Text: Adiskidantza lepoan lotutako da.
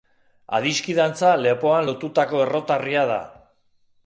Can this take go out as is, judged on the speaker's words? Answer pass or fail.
fail